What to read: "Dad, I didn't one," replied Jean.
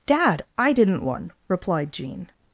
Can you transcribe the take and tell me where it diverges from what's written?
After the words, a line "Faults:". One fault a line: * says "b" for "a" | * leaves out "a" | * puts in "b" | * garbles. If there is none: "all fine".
"Dad, I didn't one," replied Jean.
Faults:
all fine